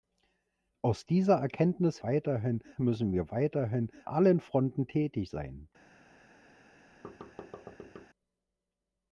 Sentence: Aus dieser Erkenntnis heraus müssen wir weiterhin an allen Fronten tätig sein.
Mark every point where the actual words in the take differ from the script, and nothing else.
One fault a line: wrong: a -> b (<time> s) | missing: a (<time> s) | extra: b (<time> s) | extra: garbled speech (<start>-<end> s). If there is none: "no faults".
wrong: heraus -> weiterhin (2.0 s)
missing: an (3.9 s)